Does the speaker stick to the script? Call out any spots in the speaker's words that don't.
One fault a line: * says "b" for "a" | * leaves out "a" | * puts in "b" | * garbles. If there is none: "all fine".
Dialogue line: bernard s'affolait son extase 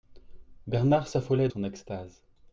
all fine